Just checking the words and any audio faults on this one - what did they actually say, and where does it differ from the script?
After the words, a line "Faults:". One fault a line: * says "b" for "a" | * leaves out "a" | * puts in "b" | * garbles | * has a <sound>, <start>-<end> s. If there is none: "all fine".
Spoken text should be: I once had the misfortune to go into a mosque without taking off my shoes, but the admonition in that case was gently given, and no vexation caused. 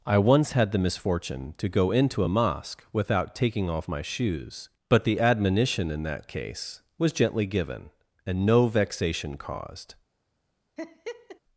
I once had the misfortune to go into a mosque without taking off my shoes, but the admonition in that case was gently given, and no vexation caused.
Faults:
* has a laugh, 10.8-11.4 s